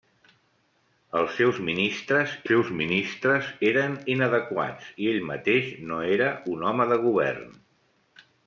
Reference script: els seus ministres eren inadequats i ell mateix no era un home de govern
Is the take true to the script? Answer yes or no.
no